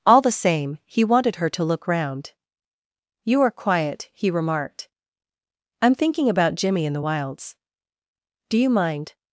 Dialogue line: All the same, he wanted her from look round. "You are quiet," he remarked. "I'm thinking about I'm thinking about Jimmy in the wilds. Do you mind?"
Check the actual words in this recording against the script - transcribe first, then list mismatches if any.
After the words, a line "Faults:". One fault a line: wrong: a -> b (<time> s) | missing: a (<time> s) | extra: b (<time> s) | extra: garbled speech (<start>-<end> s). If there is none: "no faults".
All the same, he wanted her to look round. "You are quiet," he remarked. "I'm thinking about Jimmy in the wilds. Do you mind?"
Faults:
wrong: from -> to (1.5 s)
missing: I'm thinking about (6.5 s)